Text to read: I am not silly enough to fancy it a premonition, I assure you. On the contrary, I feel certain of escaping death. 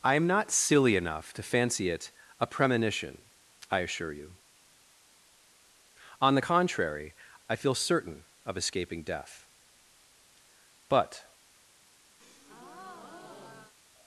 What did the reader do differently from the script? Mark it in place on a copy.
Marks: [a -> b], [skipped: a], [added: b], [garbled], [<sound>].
I am not silly enough to fancy it a premonition, I assure you. On the contrary, I feel certain of escaping death. [added: But] [breath]